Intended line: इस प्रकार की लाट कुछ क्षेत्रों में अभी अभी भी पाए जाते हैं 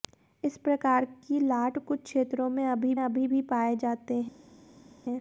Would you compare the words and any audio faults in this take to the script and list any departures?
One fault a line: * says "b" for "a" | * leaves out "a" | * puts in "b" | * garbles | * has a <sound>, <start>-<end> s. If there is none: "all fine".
all fine